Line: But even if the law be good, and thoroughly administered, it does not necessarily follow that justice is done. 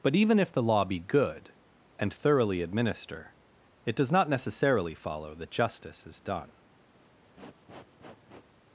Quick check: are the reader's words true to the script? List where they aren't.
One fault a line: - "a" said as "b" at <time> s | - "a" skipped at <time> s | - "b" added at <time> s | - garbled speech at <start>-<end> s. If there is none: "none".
- "administered" said as "administer" at 2.6 s